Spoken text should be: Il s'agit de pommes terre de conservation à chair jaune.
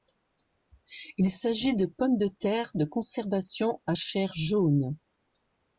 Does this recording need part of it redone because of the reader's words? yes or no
yes